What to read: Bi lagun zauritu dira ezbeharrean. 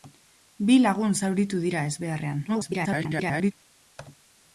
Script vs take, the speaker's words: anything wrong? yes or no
yes